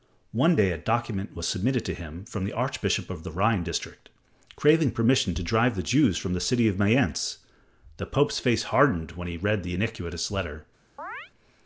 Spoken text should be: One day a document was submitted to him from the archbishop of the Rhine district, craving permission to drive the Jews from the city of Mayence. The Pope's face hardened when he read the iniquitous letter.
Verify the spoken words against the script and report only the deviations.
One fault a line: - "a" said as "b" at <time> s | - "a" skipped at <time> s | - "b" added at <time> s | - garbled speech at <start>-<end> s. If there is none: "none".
none